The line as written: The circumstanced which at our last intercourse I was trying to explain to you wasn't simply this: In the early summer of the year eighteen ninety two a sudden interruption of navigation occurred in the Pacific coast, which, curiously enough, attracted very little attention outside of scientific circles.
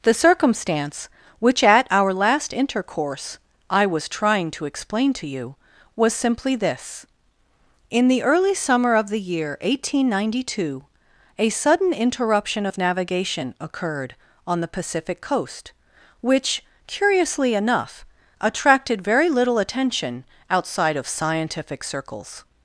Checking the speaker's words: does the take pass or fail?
fail